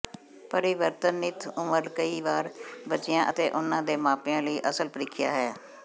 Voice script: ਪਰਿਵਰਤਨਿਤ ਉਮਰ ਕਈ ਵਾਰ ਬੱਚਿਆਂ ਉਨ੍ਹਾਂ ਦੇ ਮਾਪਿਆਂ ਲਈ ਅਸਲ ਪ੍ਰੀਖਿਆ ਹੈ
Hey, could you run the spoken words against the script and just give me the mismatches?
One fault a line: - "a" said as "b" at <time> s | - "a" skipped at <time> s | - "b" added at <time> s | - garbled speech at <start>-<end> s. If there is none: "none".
- "ਅਤੇ" added at 3.3 s